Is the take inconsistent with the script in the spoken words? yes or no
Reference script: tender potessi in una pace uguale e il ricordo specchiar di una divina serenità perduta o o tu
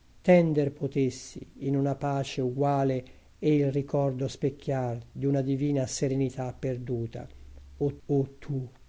no